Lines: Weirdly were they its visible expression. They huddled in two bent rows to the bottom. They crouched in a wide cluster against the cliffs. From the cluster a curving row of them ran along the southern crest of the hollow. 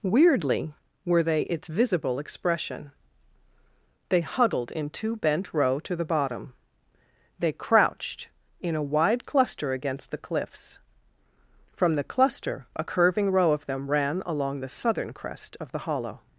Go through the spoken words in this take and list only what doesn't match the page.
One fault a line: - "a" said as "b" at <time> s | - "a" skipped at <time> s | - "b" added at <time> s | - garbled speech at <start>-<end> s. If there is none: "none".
- "rows" said as "row" at 5.5 s